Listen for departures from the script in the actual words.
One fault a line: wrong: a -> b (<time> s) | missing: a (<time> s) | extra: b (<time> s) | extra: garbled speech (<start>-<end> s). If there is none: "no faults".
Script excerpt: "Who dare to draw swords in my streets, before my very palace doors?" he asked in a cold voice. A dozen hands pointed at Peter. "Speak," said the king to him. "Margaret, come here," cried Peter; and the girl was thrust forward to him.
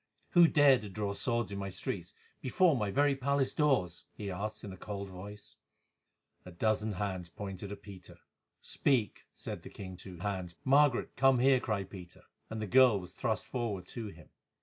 wrong: him -> hands (10.2 s)